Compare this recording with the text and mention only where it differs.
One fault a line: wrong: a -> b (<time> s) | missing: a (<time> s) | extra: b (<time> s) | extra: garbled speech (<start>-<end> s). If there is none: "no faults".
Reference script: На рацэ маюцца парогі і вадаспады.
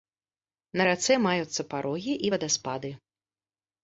no faults